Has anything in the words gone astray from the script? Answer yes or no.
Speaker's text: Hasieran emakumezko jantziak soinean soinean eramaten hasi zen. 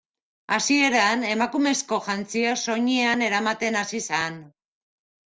yes